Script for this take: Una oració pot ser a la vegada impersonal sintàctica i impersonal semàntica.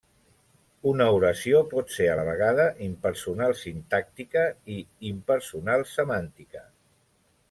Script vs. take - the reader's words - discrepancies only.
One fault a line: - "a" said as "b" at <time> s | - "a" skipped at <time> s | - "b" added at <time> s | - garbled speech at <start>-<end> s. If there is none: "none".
none